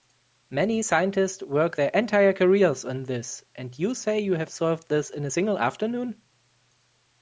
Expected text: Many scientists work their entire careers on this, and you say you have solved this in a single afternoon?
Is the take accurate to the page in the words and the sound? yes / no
yes